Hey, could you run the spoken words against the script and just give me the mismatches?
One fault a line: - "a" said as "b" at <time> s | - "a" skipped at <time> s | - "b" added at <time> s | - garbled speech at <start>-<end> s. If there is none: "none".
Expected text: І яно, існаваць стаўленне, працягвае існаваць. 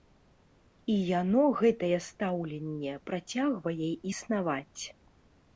- "існаваць" said as "гэтае" at 1.6 s